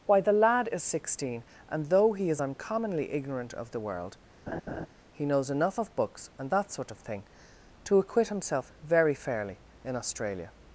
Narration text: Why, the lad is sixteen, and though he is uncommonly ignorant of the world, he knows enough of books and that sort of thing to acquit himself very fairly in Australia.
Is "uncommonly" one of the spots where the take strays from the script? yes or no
no